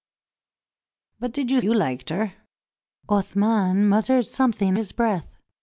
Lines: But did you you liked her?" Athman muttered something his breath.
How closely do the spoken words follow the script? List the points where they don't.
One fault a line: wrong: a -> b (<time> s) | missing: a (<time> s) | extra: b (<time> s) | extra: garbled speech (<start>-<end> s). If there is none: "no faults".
no faults